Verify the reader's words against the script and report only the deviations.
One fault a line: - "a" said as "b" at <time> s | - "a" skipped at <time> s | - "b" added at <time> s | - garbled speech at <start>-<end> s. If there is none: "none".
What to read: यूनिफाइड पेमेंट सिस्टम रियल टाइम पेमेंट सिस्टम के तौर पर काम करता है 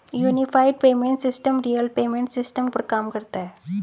- "टाइम" skipped at 1.9 s
- "के तौर" skipped at 2.7 s